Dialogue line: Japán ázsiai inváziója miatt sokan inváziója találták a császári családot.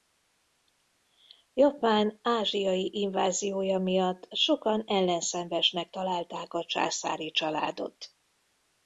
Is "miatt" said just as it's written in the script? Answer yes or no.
yes